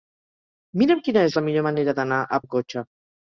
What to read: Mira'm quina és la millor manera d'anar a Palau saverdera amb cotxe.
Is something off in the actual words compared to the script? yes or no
yes